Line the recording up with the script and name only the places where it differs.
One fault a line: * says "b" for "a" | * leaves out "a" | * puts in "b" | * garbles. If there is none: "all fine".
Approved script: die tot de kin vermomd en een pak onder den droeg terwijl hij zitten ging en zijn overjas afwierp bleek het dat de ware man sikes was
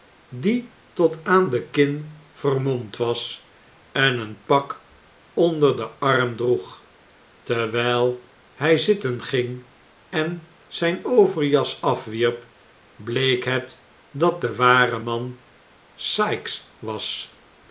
* puts in "aan"
* puts in "was"
* puts in "arm"